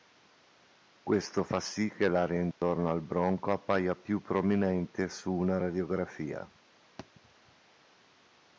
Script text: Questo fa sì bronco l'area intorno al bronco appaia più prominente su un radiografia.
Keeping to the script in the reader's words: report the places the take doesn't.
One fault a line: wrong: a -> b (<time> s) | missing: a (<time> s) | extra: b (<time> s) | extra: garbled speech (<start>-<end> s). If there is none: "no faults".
wrong: bronco -> che (1.9 s)
wrong: un -> una (5.3 s)